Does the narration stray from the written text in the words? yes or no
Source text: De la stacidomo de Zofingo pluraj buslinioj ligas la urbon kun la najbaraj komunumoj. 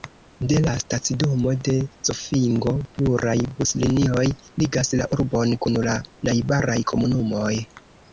no